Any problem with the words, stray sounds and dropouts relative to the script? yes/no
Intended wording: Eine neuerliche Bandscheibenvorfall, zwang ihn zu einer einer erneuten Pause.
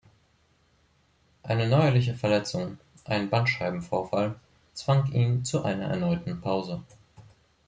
yes